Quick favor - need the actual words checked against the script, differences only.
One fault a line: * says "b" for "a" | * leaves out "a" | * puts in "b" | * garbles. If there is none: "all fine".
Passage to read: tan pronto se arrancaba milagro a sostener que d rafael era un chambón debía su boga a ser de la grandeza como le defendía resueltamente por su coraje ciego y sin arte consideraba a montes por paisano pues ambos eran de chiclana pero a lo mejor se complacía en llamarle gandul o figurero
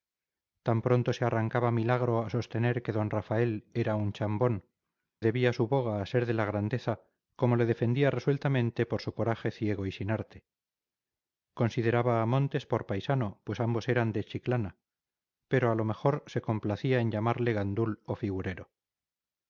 all fine